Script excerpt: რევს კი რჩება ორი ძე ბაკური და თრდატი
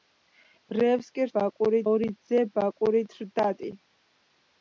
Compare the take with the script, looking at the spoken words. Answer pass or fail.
fail